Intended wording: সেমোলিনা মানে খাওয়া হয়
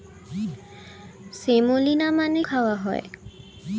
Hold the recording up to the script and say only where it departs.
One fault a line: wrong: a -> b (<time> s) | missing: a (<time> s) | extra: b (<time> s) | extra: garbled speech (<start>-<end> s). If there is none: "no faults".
no faults